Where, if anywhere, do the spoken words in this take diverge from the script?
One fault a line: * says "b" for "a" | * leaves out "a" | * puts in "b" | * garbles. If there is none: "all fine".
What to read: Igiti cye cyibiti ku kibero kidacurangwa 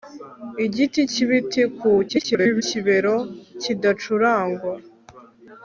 * leaves out "cye"
* garbles